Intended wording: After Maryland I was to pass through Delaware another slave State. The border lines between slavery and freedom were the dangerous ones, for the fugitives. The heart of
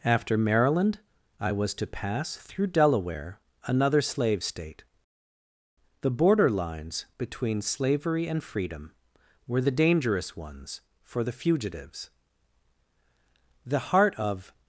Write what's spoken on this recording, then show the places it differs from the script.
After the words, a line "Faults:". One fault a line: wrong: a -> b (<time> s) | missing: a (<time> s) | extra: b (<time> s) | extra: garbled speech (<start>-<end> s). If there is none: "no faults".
After Maryland I was to pass through Delaware another slave State. The border lines between slavery and freedom were the dangerous ones, for the fugitives. The heart of
Faults:
no faults